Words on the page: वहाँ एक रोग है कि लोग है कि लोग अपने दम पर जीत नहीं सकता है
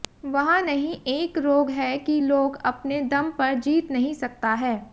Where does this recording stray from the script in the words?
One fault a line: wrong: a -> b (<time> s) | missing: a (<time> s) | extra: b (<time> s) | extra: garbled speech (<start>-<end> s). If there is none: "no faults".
extra: नहीं (0.6 s)
missing: है कि लोग (2.6 s)